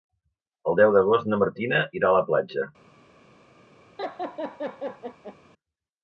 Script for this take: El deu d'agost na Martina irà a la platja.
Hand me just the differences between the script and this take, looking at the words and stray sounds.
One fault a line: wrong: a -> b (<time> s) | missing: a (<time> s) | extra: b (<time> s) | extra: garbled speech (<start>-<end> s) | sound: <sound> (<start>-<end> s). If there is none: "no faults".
sound: laugh (4.0-5.4 s)